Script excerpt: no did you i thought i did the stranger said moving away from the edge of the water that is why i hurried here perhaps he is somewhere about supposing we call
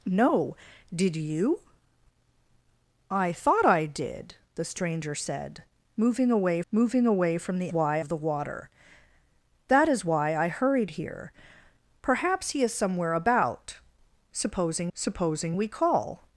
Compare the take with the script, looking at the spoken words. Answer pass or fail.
fail